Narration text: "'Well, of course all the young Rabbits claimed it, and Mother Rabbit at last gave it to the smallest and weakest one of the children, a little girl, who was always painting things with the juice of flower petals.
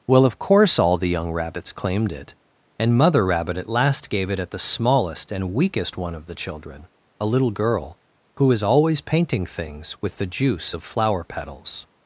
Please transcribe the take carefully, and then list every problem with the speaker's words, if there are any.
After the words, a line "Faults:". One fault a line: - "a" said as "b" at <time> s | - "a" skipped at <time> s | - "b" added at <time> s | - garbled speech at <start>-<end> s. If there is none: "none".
"'Well, of course all the young Rabbits claimed it, and Mother Rabbit at last gave it at the smallest and weakest one of the children, a little girl, who was always painting things with the juice of flower petals.
Faults:
- "to" said as "at" at 4.4 s